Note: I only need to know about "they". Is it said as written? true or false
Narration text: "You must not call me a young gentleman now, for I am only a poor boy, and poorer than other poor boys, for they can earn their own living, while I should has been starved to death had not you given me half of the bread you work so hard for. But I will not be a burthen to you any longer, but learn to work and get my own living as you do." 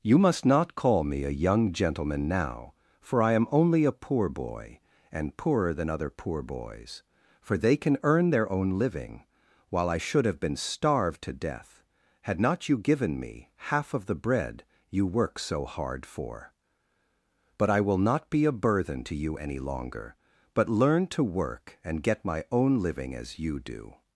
true